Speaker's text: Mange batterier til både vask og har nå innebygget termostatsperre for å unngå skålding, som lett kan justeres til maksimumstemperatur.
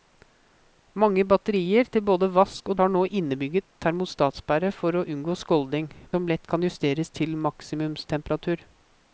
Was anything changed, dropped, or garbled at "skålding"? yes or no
no